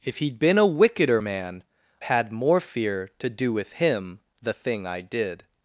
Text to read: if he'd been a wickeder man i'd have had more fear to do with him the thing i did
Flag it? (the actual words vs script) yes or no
yes